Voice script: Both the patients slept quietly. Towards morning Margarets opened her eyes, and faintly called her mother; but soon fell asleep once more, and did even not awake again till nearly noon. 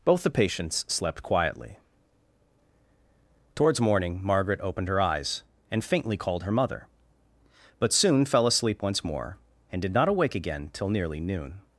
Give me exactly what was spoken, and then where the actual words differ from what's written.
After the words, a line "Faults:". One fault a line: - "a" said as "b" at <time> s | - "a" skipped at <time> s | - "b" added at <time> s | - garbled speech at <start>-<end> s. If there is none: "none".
Both the patients slept quietly. Towards morning Margaret opened her eyes, and faintly called her mother; but soon fell asleep once more, and did not awake again till nearly noon.
Faults:
- "Margarets" said as "Margaret" at 4.2 s
- "even" skipped at 9.9 s